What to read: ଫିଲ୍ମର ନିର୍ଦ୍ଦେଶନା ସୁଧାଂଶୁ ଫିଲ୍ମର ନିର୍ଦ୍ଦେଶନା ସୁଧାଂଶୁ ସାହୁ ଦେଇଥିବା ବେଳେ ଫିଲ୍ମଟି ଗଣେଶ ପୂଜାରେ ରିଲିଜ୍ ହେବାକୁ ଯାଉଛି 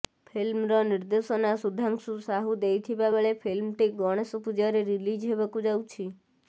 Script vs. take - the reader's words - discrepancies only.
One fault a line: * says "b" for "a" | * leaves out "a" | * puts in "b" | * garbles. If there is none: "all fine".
* leaves out "ଫିଲ୍ମର ନିର୍ଦ୍ଦେଶନା ସୁଧାଂଶୁ"